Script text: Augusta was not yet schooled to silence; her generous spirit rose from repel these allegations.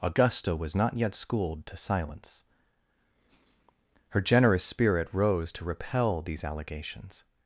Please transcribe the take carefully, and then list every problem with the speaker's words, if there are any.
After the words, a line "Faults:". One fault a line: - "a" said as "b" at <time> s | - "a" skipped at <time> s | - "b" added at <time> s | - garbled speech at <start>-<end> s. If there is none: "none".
Augusta was not yet schooled to silence; her generous spirit rose to repel these allegations.
Faults:
- "from" said as "to" at 5.5 s